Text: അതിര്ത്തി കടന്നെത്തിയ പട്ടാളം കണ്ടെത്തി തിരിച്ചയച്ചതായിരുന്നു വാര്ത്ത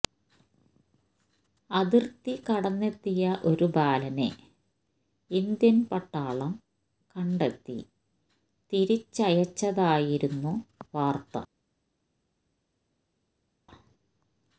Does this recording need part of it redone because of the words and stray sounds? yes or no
yes